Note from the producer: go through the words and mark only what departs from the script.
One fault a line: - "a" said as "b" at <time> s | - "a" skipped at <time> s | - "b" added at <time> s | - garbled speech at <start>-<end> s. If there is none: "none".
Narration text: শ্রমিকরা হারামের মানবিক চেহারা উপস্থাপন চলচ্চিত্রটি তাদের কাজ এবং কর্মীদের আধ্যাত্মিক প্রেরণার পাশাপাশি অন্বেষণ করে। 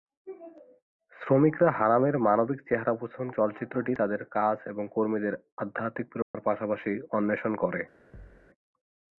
none